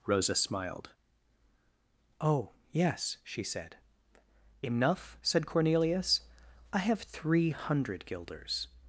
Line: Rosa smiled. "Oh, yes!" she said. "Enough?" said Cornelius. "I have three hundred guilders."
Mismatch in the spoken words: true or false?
false